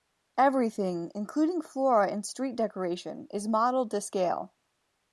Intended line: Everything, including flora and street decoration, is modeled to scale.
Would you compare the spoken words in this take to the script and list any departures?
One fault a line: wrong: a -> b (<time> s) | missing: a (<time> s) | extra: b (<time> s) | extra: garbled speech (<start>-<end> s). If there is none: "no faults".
no faults